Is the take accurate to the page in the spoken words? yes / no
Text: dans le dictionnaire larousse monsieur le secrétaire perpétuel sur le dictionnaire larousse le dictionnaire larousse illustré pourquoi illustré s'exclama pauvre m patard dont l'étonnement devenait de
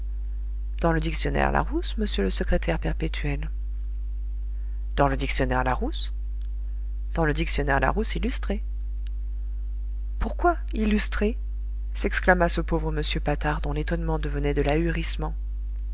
no